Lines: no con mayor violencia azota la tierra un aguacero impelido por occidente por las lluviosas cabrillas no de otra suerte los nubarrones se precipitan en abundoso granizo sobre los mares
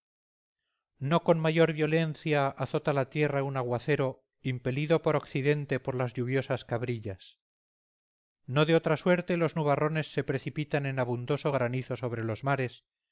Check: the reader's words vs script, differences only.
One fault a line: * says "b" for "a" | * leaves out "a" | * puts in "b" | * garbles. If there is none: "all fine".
all fine